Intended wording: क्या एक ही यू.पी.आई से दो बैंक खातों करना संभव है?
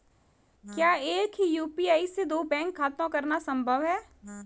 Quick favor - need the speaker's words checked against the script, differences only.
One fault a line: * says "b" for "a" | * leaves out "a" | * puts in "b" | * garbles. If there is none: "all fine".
all fine